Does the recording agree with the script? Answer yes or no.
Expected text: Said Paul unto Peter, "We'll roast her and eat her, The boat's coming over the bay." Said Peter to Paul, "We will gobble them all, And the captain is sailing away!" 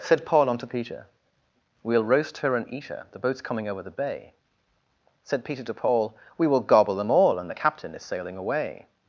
yes